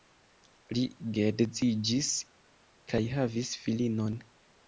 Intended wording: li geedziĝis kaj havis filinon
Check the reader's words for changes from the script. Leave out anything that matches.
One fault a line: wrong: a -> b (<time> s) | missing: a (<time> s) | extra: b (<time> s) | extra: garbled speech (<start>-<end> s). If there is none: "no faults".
no faults